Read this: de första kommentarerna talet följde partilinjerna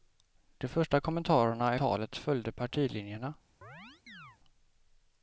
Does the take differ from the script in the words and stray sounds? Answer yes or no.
yes